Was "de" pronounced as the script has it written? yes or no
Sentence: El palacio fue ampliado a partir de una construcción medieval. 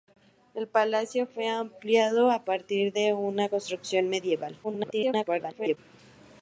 yes